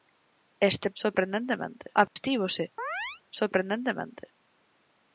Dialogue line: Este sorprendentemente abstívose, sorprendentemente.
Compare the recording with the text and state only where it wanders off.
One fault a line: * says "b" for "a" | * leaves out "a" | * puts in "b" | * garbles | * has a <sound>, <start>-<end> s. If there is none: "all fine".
* has a dropout, 2.1-2.2 s
* has a chirp, 2.8-3.2 s